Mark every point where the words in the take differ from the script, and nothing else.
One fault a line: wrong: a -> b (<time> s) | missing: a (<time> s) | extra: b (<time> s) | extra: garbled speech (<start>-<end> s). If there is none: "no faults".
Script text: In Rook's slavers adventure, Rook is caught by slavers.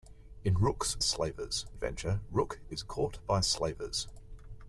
no faults